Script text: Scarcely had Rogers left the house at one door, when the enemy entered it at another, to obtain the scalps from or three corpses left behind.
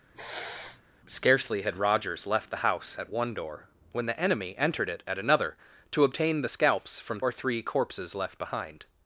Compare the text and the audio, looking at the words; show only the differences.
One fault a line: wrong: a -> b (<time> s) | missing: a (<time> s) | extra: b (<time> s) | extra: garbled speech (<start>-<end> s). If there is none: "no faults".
no faults